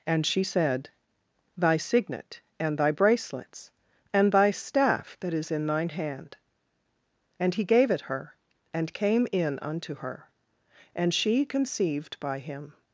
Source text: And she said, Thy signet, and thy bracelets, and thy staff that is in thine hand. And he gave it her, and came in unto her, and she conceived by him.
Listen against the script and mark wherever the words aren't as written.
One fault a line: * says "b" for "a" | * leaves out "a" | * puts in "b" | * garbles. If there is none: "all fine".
all fine